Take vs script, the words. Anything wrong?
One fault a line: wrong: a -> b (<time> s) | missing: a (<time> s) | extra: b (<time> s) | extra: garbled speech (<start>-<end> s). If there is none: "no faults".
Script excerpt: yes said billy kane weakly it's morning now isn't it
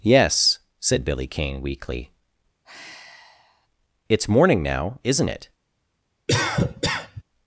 no faults